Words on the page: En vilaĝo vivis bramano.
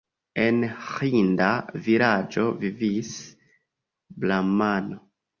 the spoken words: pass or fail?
fail